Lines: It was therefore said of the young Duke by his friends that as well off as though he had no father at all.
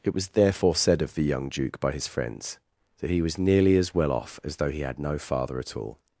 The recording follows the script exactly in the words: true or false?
false